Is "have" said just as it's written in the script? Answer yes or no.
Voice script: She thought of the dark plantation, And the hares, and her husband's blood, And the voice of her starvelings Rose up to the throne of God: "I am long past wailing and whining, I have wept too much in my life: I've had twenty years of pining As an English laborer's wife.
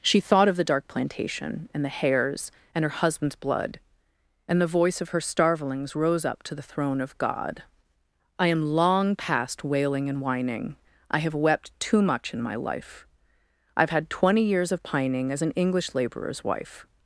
yes